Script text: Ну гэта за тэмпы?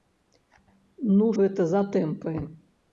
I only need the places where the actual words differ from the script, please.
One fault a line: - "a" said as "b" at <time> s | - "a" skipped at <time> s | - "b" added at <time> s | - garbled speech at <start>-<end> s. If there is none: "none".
none